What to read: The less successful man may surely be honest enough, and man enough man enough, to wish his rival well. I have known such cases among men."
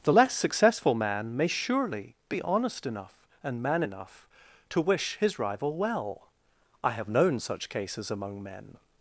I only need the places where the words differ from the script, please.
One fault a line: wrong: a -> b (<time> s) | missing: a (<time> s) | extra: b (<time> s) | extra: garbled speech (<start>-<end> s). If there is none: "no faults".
missing: man enough (4.3 s)